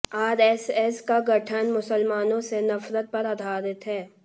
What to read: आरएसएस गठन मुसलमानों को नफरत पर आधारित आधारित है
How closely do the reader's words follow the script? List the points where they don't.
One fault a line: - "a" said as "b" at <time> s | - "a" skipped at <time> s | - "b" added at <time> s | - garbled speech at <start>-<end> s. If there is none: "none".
- "का" added at 1.0 s
- "को" said as "से" at 2.4 s
- "आधारित" skipped at 3.9 s